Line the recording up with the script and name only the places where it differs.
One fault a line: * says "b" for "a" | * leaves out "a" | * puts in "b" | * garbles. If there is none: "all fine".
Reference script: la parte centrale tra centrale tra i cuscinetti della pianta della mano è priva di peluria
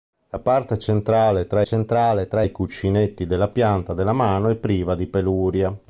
all fine